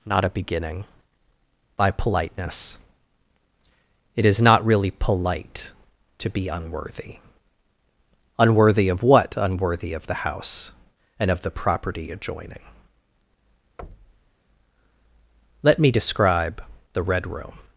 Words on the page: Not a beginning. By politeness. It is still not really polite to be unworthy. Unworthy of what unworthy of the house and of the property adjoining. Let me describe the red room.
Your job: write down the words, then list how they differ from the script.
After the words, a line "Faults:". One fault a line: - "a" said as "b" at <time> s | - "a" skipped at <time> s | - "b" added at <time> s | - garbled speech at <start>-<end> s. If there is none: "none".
Not a beginning. By politeness. It is not really polite to be unworthy. Unworthy of what unworthy of the house and of the property adjoining. Let me describe the red room.
Faults:
- "still" skipped at 4.4 s